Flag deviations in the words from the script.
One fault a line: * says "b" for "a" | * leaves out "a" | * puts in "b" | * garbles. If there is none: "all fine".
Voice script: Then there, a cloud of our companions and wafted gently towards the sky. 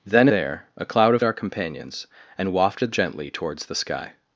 all fine